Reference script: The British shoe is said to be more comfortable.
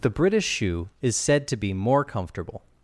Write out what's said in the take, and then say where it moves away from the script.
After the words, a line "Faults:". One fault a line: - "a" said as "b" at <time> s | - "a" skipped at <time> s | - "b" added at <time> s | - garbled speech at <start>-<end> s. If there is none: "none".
The British shoe is said to be more comfortable.
Faults:
none